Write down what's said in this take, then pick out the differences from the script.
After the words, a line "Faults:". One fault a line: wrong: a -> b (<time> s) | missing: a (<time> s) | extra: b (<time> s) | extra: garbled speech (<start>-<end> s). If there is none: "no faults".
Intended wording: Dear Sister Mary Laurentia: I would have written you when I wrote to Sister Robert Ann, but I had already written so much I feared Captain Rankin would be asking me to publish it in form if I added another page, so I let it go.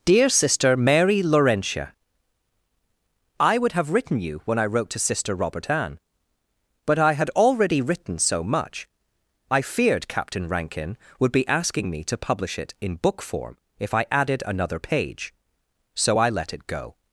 Dear Sister Mary Laurentia: I would have written you when I wrote to Sister Robert Ann, but I had already written so much I feared Captain Rankin would be asking me to publish it in book form if I added another page, so I let it go.
Faults:
extra: book (12.9 s)